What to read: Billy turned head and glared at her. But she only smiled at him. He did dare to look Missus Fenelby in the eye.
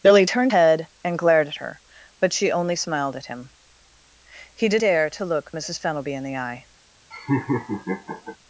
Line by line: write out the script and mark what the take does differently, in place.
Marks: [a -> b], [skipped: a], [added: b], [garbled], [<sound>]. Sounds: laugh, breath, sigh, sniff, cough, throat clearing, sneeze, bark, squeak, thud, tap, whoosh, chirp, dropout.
Billy turned head and glared at her. But she only smiled at him. He did dare to look Missus Fenelby in the eye. [laugh]